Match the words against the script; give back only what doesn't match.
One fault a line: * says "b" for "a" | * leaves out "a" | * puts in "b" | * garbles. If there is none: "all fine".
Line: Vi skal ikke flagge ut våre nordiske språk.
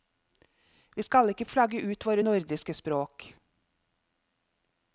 all fine